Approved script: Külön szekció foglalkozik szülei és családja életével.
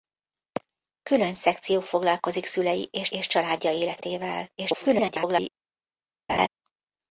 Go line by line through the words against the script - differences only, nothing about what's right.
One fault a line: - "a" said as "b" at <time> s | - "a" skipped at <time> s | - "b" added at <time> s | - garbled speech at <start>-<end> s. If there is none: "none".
- "és" added at 3.1 s
- garbled speech at 4.6-5.5 s